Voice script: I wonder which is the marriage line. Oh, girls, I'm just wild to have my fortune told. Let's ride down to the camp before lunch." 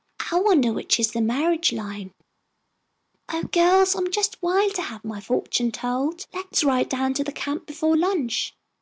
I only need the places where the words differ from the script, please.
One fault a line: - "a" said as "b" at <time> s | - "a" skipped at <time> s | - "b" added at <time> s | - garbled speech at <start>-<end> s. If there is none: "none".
none